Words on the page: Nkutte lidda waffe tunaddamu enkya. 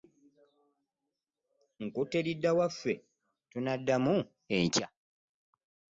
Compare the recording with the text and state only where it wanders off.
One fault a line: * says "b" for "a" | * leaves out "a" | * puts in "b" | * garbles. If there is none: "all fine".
all fine